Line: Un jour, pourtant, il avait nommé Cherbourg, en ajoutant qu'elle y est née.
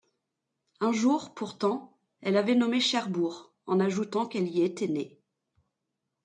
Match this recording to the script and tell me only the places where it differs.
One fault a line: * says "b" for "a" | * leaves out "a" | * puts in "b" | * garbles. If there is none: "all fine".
* says "elle" for "il"
* says "était" for "est"